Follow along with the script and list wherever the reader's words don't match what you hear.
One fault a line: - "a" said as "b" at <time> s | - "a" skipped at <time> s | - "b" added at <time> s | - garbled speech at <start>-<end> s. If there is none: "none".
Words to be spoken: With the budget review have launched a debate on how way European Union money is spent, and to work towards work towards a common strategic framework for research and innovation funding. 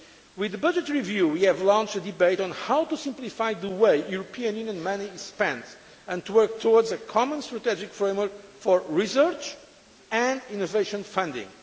- "we" added at 1.3 s
- "to simplify the" added at 2.8 s
- "work towards" skipped at 6.9 s